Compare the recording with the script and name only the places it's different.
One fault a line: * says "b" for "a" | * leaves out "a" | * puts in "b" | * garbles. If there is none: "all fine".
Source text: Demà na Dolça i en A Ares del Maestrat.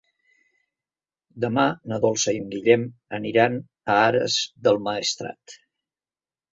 * puts in "Guillem aniran"